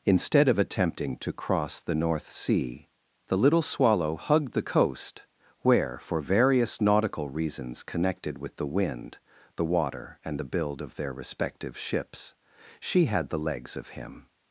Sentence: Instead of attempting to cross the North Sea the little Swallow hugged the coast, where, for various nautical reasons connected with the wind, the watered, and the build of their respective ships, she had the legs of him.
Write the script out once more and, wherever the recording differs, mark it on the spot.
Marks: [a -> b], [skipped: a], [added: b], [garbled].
Instead of attempting to cross the North Sea the little Swallow hugged the coast, where, for various nautical reasons connected with the wind, the [watered, -> water] and the build of their respective ships, she had the legs of him.